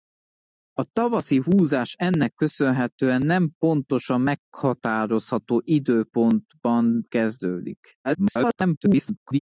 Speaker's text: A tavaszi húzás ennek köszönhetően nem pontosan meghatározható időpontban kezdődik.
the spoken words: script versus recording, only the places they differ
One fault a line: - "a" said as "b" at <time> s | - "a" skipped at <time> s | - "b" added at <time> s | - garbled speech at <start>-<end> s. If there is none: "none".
- garbled speech at 8.0-9.4 s